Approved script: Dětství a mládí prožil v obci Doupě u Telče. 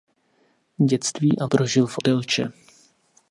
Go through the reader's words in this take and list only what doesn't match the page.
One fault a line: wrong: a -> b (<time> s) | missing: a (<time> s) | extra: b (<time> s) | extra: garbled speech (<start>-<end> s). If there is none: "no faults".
missing: mládí (1.5 s)
missing: obci Doupě u (2.0 s)